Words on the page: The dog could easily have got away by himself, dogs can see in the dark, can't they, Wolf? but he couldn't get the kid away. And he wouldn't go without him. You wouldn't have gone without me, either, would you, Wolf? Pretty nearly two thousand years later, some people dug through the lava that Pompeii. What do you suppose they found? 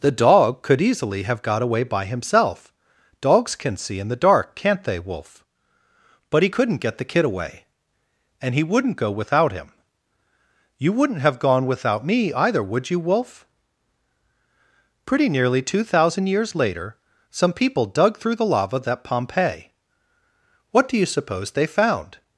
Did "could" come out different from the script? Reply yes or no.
no